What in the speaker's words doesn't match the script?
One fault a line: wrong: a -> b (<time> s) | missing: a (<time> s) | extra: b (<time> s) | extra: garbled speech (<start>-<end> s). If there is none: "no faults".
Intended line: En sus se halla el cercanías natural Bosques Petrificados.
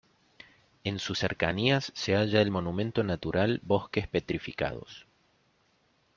extra: cercanías (1.1 s)
wrong: cercanías -> monumento (2.5 s)